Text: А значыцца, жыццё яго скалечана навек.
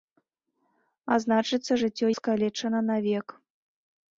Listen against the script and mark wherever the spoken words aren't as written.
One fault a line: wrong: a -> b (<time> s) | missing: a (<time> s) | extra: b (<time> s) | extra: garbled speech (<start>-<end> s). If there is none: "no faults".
missing: яго (2.1 s)